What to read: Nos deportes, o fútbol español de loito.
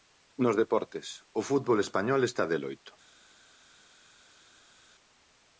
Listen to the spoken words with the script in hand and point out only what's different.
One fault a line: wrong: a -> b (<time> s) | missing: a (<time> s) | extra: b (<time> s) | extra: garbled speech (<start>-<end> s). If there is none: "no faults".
extra: está (2.2 s)